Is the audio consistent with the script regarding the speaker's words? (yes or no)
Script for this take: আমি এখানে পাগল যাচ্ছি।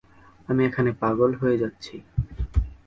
no